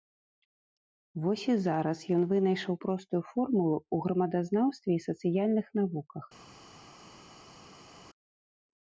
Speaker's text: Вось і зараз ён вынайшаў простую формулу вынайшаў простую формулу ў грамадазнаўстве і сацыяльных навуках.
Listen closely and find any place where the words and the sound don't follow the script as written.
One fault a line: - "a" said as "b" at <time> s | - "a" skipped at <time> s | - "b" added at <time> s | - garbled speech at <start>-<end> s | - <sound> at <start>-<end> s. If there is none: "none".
- "вынайшаў простую формулу" skipped at 3.8 s